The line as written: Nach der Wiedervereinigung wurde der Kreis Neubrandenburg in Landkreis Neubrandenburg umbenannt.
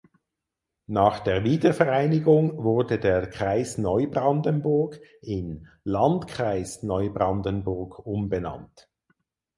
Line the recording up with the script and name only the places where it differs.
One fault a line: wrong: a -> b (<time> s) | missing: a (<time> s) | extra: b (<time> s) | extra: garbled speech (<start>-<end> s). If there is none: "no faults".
no faults